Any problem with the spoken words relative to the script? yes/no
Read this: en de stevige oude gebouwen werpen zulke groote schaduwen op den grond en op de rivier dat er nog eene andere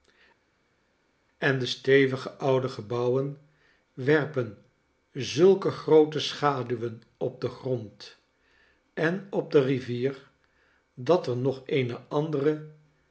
no